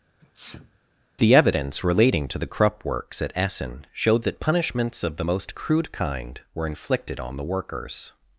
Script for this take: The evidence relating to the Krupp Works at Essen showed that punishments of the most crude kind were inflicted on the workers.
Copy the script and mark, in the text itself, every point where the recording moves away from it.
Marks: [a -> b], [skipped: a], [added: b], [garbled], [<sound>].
[sneeze] The evidence relating to the Krupp Works at Essen showed that punishments of the most crude kind were inflicted on the workers.